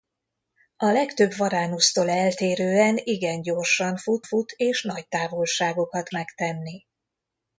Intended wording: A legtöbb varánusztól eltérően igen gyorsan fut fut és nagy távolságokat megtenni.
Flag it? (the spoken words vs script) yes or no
no